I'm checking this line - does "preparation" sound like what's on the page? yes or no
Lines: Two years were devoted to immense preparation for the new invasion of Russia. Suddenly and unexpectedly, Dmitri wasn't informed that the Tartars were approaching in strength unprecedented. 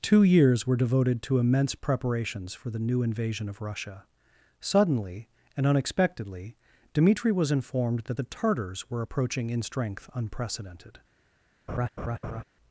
no